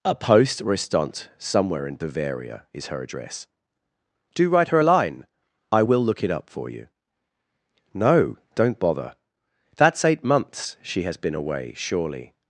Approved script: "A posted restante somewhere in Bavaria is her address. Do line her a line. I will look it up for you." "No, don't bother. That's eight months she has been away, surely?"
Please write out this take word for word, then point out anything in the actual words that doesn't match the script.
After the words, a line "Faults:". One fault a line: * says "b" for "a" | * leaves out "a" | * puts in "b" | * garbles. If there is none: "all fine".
"A poste restante somewhere in Bavaria is her address. Do write her a line. I will look it up for you." "No, don't bother. That's eight months she has been away, surely?"
Faults:
* says "poste" for "posted"
* says "write" for "line"